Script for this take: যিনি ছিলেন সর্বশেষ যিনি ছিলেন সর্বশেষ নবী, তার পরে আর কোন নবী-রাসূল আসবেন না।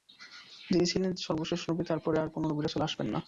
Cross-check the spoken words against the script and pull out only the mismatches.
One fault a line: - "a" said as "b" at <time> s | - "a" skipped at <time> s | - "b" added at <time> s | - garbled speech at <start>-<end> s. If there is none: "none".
- "যিনি ছিলেন সর্বশেষ" skipped at 1.6 s